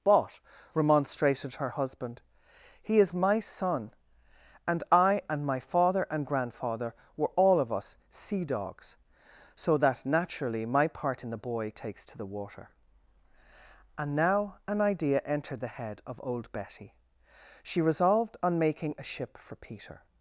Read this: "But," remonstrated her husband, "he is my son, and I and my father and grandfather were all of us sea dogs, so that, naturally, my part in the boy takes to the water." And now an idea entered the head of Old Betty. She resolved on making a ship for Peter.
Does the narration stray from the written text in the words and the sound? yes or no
no